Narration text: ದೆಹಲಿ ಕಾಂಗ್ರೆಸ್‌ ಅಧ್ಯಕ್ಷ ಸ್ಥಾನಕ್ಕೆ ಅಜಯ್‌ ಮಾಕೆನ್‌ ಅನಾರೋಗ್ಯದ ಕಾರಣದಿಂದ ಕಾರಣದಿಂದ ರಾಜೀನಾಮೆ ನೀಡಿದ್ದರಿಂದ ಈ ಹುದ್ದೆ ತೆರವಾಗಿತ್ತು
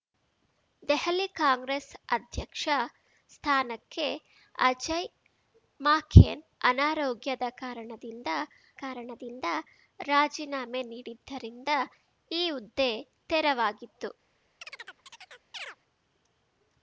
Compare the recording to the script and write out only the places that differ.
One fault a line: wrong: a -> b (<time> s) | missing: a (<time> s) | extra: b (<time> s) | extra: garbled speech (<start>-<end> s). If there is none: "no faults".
no faults